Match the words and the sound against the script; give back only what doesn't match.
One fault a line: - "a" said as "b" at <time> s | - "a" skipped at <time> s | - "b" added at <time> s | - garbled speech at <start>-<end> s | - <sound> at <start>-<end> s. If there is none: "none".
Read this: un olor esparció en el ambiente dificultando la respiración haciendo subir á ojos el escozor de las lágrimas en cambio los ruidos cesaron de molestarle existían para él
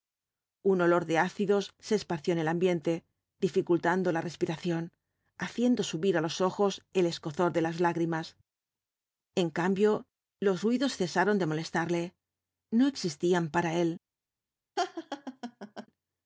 - "de ácidos se" added at 1.1 s
- "los" added at 6.2 s
- "no" added at 12.8 s
- laugh at 14.8-15.9 s